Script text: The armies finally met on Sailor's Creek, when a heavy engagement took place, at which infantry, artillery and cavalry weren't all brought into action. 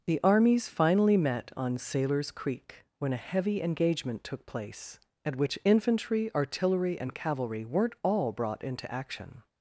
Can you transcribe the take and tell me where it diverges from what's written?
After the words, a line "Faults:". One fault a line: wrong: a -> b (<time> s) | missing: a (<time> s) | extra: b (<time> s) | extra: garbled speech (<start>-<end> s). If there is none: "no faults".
The armies finally met on Sailor's Creek, when a heavy engagement took place, at which infantry, artillery and cavalry weren't all brought into action.
Faults:
no faults